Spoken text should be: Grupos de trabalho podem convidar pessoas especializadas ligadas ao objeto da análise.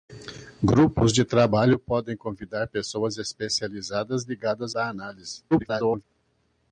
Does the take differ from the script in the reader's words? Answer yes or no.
yes